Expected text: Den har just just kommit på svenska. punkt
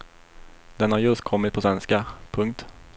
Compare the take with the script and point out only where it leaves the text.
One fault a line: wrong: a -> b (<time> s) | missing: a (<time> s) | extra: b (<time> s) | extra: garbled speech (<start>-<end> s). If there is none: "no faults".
missing: just (1.2 s)